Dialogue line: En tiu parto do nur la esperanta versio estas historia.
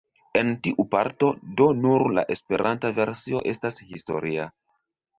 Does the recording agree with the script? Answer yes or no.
yes